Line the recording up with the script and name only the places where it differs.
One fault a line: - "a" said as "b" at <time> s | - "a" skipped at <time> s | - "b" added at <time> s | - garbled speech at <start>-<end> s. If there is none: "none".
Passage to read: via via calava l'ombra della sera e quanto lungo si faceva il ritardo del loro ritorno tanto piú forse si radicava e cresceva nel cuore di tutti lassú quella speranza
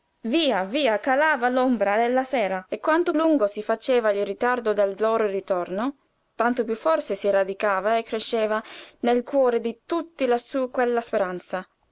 none